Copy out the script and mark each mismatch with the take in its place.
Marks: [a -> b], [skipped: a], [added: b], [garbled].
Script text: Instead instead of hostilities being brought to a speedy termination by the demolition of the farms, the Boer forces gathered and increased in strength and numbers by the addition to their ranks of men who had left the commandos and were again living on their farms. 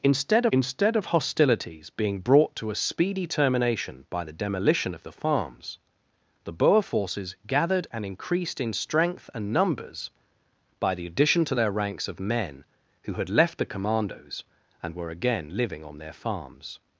Instead instead of hostilities being brought to a speedy termination by the demolition of the farms, the Boer forces gathered and increased in strength and numbers by the addition to their ranks of men who had left the commandos and were again living on their farms.